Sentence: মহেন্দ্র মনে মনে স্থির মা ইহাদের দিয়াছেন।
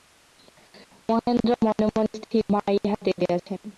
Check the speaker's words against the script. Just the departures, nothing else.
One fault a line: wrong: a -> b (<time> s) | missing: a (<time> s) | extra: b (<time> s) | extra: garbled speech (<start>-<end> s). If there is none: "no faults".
no faults